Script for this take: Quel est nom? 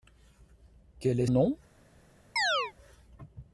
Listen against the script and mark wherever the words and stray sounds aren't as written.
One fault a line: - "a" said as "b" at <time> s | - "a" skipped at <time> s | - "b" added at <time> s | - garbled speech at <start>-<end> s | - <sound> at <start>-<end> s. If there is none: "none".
- chirp at 2.4-2.7 s